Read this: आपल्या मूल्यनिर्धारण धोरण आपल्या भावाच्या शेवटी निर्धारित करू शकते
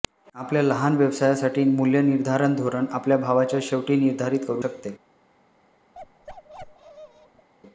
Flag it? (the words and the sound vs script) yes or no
yes